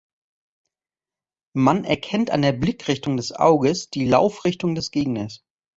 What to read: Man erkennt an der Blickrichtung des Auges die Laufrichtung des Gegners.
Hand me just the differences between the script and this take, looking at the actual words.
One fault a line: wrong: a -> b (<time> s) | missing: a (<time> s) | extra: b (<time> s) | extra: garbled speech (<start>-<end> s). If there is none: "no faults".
no faults